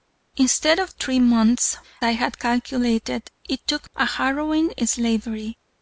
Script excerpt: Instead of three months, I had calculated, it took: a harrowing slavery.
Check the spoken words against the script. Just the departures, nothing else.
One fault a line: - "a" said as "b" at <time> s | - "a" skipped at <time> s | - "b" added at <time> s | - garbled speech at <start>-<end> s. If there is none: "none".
none